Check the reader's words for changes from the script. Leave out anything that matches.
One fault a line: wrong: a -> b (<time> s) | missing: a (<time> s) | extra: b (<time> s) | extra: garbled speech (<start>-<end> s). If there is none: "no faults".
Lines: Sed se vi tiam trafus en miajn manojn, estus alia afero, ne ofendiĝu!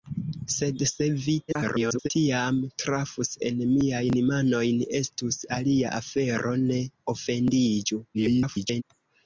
extra: garbled speech (1.5-2.1 s)
extra: garbled speech (8.1-8.8 s)